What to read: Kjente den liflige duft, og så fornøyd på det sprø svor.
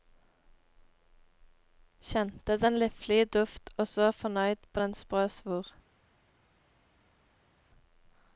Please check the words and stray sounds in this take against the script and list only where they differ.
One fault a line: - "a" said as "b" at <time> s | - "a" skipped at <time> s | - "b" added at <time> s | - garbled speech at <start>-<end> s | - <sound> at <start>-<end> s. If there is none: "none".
- "det" said as "den" at 4.8 s